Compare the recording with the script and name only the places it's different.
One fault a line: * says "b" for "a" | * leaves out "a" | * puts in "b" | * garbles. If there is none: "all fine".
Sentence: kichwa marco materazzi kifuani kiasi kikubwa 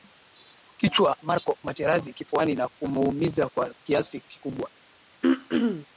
* puts in "na kumuumiza kwa"